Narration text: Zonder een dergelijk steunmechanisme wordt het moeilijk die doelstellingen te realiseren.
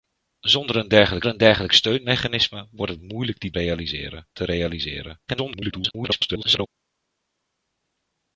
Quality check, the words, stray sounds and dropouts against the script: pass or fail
fail